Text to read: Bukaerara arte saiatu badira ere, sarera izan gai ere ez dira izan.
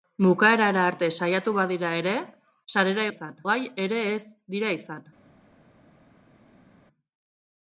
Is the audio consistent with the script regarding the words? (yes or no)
yes